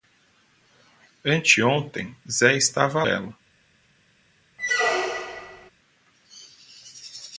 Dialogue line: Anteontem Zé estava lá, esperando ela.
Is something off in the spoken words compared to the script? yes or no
yes